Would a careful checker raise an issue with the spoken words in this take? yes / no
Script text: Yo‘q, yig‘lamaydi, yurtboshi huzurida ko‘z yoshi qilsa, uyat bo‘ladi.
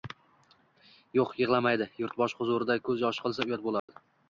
no